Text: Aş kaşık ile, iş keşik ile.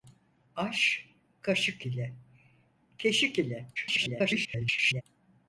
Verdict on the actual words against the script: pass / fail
fail